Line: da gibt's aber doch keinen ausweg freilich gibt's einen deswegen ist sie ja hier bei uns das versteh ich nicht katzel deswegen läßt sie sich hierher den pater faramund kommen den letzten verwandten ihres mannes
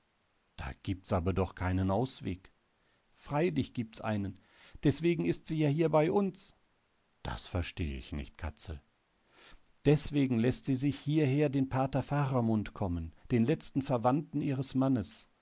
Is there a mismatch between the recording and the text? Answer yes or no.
no